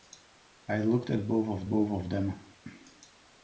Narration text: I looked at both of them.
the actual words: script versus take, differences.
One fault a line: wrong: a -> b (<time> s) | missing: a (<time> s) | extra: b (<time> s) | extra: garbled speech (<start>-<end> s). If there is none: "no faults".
extra: both of (1.7 s)